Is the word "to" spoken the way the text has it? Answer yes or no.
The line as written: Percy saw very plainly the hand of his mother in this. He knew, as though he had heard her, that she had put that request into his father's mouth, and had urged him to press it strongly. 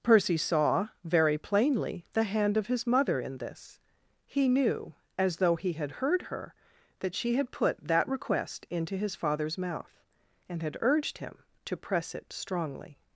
yes